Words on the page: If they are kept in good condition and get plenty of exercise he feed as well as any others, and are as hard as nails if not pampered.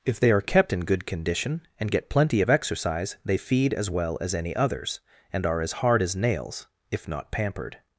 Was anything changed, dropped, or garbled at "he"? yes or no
yes